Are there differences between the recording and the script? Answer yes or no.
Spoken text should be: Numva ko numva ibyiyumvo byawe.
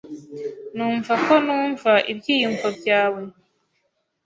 no